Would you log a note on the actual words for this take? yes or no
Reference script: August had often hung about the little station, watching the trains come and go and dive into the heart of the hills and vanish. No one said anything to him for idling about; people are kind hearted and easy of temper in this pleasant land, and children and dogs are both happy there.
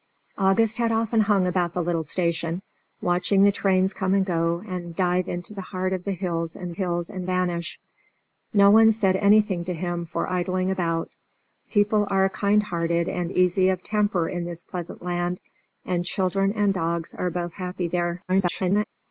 yes